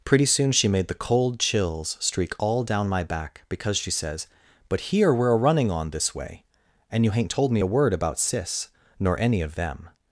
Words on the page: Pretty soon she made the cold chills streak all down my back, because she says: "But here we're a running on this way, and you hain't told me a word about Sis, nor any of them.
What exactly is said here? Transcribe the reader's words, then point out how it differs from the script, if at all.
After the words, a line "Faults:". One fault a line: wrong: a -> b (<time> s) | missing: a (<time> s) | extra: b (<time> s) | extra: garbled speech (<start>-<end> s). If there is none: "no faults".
Pretty soon she made the cold chills streak all down my back, because she says: "But here we're a running on this way, and you hain't told me a word about Sis, nor any of them.
Faults:
no faults